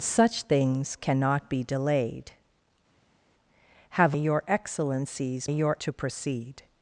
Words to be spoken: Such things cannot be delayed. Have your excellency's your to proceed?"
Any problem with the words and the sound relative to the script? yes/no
no